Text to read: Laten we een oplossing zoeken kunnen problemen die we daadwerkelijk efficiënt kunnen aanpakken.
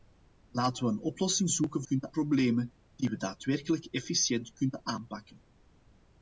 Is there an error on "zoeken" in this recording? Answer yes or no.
no